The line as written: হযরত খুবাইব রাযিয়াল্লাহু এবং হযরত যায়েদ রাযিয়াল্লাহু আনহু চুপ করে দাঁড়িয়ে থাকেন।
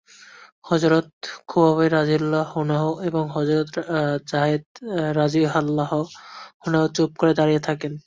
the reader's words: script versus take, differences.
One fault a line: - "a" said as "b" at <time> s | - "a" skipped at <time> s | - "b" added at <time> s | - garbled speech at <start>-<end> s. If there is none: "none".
- "আনহু" added at 2.6 s